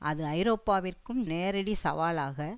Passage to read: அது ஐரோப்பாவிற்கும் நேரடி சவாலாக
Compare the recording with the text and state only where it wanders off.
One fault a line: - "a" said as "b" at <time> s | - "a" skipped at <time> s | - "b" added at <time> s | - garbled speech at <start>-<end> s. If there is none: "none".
none